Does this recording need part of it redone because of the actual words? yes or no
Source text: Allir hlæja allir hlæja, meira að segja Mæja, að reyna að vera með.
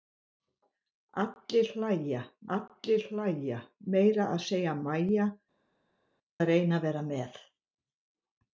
no